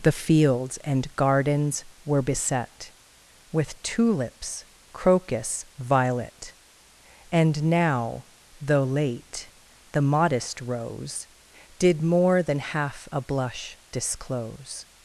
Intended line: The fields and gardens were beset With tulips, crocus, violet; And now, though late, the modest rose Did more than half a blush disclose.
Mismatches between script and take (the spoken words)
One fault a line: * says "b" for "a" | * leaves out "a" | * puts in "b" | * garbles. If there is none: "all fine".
all fine